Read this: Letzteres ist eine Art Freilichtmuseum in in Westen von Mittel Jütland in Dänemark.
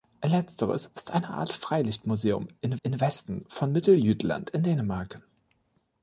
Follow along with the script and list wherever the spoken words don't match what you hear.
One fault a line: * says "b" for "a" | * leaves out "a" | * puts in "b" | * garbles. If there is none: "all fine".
all fine